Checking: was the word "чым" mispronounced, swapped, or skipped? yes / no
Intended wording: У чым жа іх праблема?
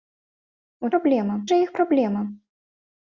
yes